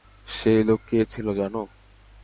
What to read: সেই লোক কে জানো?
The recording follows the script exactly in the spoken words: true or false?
false